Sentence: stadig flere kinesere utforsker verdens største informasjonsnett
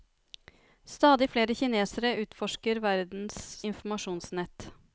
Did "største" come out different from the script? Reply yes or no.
yes